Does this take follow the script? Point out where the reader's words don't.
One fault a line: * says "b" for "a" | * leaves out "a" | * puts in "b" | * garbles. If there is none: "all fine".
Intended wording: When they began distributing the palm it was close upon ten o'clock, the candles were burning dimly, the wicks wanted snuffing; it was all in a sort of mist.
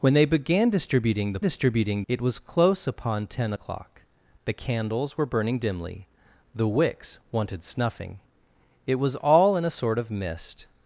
* says "distributing" for "palm"